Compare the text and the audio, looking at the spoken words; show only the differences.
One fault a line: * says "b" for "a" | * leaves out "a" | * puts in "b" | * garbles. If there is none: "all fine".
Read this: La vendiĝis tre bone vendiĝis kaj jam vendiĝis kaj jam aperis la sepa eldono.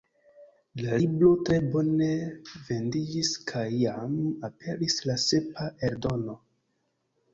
* says "libro" for "vendiĝis"
* leaves out "vendiĝis kaj jam"